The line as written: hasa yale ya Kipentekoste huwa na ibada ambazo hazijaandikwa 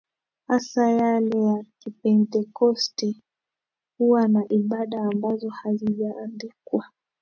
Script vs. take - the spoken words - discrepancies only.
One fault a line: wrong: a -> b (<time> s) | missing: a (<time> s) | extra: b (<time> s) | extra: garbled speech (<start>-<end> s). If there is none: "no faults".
no faults